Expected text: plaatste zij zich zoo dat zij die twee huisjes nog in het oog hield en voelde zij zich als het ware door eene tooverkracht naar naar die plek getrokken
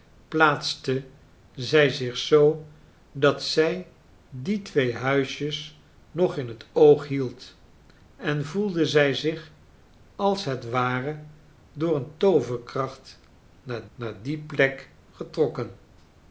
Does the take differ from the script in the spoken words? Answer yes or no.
no